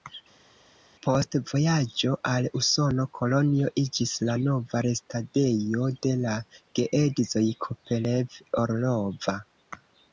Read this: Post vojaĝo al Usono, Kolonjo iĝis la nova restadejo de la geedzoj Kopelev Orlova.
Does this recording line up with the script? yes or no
yes